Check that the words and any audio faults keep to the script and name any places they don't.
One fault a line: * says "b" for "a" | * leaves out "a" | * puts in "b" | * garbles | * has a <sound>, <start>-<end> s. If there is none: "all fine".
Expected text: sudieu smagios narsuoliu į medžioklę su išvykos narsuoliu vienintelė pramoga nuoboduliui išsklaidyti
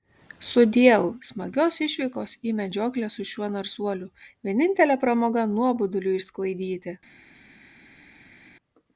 * says "išvykos" for "narsuoliu"
* says "šiuo" for "išvykos"